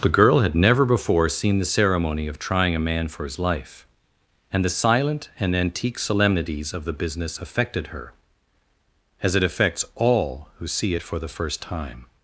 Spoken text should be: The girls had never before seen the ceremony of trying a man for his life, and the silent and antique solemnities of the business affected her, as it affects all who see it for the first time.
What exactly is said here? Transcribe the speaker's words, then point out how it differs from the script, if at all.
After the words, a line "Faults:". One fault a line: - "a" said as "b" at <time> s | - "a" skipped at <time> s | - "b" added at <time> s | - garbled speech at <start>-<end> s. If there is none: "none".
The girl had never before seen the ceremony of trying a man for his life, and the silent and antique solemnities of the business affected her, as it affects all who see it for the first time.
Faults:
- "girls" said as "girl" at 0.1 s